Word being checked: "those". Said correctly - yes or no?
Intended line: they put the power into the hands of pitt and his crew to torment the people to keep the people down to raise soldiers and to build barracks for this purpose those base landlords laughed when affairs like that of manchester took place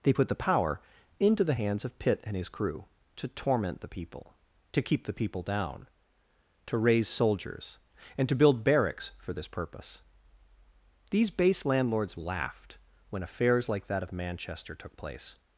no